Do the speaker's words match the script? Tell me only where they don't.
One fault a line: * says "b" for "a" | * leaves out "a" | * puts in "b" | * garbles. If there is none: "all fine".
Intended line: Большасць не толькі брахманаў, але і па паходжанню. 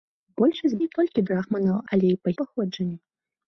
all fine